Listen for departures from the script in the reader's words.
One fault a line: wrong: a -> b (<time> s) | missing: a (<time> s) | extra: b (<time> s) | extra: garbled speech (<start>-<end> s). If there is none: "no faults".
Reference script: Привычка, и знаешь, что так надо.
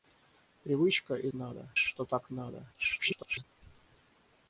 wrong: знаешь -> надо (1.3 s)
extra: garbled speech (2.7-3.4 s)